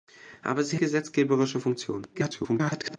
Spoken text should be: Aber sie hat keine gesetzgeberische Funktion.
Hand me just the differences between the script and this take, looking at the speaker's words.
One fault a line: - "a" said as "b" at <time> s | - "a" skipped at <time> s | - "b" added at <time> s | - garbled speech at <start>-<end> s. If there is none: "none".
- "hat keine" skipped at 0.8 s
- garbled speech at 2.1-3.0 s